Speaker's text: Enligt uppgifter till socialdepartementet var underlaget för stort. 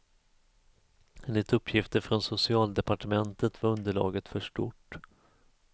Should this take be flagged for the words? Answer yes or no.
yes